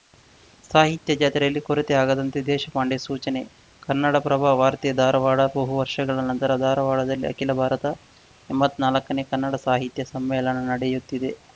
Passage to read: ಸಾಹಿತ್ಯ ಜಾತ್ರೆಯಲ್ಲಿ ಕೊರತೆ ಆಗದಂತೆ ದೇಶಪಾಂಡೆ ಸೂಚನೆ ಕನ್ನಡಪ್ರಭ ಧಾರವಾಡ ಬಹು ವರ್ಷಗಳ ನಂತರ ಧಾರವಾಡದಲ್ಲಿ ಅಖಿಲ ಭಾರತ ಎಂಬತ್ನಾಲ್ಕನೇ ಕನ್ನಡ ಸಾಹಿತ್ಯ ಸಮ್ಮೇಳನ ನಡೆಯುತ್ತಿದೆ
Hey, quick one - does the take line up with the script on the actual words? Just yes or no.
no